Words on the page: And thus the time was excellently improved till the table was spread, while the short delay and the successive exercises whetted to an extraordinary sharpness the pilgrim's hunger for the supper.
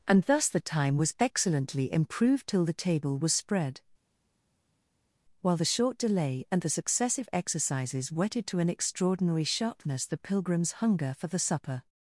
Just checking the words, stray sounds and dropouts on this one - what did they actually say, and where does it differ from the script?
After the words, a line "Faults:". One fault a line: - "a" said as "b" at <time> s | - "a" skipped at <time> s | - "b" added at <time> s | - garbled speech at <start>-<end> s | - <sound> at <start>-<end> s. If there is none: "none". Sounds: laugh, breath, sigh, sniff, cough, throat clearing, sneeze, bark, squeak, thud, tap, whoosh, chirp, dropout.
And thus the time was excellently improved till the table was spread, while the short delay and the successive exercises whetted to an extraordinary sharpness the pilgrim's hunger for the supper.
Faults:
none